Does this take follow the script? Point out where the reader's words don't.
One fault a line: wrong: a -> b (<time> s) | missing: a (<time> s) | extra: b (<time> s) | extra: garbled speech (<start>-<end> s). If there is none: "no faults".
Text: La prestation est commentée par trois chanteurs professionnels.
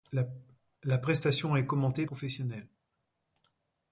missing: par trois chanteurs (2.1 s)